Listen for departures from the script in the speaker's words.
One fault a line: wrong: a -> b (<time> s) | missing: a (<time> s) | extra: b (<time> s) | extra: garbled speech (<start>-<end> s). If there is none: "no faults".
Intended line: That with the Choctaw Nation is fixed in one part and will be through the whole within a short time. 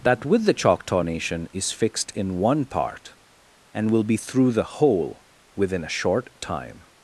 no faults